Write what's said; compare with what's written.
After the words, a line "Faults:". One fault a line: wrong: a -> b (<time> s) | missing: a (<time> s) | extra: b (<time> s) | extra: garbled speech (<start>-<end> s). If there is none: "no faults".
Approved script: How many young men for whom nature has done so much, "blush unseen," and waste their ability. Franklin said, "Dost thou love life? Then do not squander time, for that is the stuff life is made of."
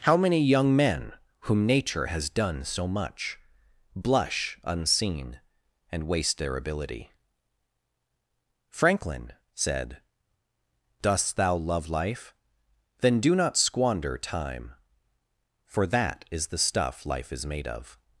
How many young men whom nature has done so much, "blush unseen," and waste their ability. Franklin said, "Dost thou love life? Then do not squander time, for that is the stuff life is made of."
Faults:
missing: for (1.1 s)